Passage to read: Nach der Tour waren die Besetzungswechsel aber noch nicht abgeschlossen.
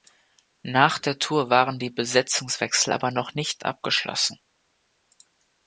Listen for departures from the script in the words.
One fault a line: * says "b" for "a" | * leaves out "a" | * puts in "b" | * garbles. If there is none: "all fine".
all fine